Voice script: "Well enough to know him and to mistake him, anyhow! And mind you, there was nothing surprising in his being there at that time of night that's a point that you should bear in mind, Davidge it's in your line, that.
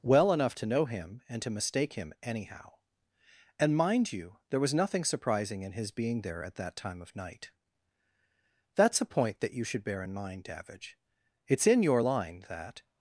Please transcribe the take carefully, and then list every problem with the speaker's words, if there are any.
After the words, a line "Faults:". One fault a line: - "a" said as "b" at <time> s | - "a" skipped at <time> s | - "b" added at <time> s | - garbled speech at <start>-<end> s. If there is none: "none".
"Well enough to know him and to mistake him, anyhow! And mind you, there was nothing surprising in his being there at that time of night that's a point that you should bear in mind, Davidge it's in your line, that.
Faults:
none